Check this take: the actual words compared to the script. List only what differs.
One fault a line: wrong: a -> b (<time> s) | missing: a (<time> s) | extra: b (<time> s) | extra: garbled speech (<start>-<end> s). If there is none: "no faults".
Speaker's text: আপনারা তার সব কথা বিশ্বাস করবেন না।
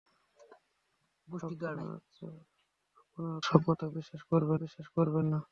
missing: তার (2.0 s)
extra: বিশ্বাস করবেন (4.5 s)